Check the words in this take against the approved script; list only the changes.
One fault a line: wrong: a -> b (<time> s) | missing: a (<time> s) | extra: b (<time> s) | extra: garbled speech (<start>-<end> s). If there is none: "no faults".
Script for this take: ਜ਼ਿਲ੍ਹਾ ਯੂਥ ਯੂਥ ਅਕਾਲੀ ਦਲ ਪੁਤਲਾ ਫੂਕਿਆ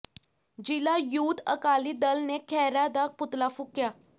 missing: ਯੂਥ (1.4 s)
extra: ਨੇ ਖਹਿਰਾ ਦਾ (2.2 s)